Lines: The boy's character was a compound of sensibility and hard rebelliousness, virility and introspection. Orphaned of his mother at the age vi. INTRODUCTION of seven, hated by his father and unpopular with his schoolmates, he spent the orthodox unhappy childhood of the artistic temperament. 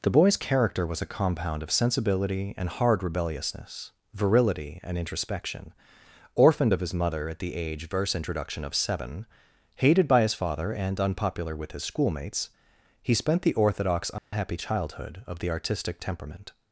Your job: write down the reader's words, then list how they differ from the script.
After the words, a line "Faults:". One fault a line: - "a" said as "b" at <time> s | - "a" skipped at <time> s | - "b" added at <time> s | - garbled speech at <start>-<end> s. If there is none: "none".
The boy's character was a compound of sensibility and hard rebelliousness, virility and introspection. Orphaned of his mother at the age verse. INTRODUCTION of seven, hated by his father and unpopular with his schoolmates, he spent the orthodox unhappy childhood of the artistic temperament.
Faults:
- "vi" said as "verse" at 7.9 s